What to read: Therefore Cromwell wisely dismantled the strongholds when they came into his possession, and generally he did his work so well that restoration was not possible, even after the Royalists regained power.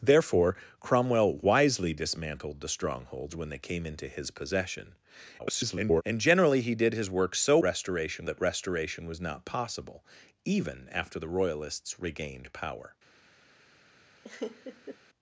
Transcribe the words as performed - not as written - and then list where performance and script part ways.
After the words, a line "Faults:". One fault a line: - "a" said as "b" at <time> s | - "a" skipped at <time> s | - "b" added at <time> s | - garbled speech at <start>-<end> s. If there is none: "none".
Therefore Cromwell wisely dismantled the strongholds when they came into his possession, [garbled] and generally he did his work so restoration that restoration was not possible, even after the Royalists regained power.
Faults:
- garbled speech at 5.4-6.0 s
- "well" said as "restoration" at 7.6 s